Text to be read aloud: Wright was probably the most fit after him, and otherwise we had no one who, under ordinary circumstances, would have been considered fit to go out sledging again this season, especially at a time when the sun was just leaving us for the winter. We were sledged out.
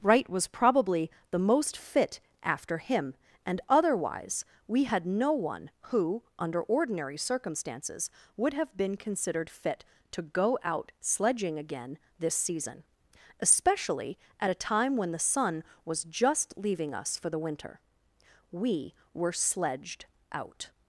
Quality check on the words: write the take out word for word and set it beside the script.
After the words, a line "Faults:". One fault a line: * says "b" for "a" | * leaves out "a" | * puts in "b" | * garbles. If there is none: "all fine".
Wright was probably the most fit after him, and otherwise we had no one who, under ordinary circumstances, would have been considered fit to go out sledging again this season, especially at a time when the sun was just leaving us for the winter. We were sledged out.
Faults:
all fine